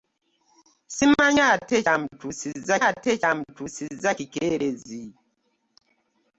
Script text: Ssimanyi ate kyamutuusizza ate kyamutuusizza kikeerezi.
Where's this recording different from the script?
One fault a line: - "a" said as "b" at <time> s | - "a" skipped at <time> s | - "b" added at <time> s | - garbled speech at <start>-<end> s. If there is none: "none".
none